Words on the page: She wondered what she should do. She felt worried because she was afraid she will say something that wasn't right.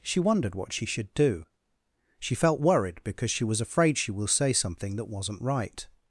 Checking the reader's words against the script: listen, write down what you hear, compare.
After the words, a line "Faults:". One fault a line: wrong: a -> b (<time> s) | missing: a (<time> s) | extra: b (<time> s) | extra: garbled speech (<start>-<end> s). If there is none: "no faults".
She wondered what she should do. She felt worried because she was afraid she will say something that wasn't right.
Faults:
no faults